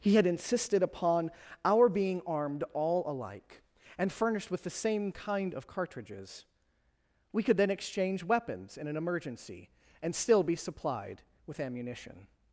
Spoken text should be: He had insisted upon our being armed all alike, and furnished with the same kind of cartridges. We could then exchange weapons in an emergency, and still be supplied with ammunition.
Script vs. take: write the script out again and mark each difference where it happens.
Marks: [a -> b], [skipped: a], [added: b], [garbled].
He had insisted upon our being armed all alike, and furnished with the same kind of cartridges. We could then exchange weapons in an emergency, and still be supplied with ammunition.